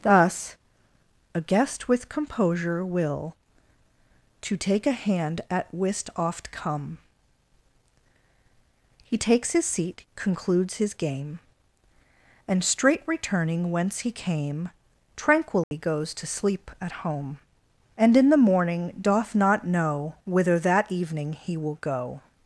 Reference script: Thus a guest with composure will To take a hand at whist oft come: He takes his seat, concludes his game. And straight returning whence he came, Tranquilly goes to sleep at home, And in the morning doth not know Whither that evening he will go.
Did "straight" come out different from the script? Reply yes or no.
no